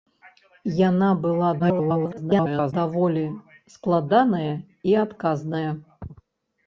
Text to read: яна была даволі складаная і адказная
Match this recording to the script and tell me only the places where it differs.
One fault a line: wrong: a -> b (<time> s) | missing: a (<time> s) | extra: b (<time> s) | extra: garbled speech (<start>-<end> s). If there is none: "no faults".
extra: garbled speech (1.6-2.7 s)